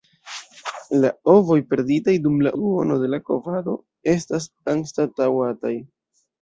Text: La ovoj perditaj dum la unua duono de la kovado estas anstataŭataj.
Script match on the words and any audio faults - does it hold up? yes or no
no